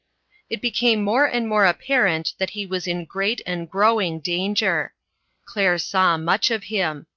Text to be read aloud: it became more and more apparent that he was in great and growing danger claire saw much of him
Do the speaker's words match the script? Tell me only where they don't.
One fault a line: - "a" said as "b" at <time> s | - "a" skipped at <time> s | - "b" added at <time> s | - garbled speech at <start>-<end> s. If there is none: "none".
none